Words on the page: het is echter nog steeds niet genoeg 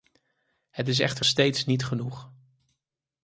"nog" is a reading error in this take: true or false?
true